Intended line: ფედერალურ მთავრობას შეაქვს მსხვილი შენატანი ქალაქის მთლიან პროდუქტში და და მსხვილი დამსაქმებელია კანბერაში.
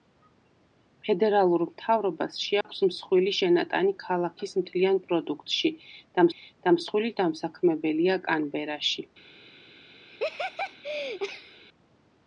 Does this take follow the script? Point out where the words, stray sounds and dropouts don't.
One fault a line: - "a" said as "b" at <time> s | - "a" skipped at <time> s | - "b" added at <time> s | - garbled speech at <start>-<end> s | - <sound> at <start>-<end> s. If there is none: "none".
- dropout at 2.6-2.6 s
- laugh at 10.1-11.6 s